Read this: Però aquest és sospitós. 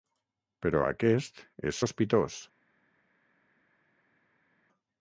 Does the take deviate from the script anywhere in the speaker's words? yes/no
no